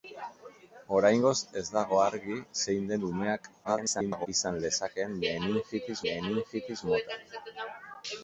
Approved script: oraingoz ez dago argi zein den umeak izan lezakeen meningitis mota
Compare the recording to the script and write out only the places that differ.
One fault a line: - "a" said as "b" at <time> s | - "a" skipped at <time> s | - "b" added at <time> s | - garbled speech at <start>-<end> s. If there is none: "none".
- garbled speech at 3.6-4.3 s
- "meningitis" added at 6.1 s